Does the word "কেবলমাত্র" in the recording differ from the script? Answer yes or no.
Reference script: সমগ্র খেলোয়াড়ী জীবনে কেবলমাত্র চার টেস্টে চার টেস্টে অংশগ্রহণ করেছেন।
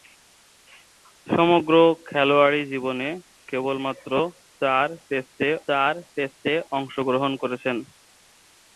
no